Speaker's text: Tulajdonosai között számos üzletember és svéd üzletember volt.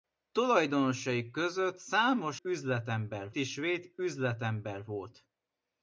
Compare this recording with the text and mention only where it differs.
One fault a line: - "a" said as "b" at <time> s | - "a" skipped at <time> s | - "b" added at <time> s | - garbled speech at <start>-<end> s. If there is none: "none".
none